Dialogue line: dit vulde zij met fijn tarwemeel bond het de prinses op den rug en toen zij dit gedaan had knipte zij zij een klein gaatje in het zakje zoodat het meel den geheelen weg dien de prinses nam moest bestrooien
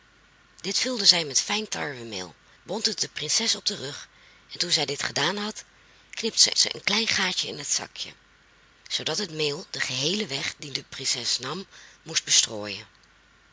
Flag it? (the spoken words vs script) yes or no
no